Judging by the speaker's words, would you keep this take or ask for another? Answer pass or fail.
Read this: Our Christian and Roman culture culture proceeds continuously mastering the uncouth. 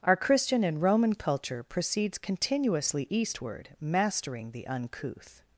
fail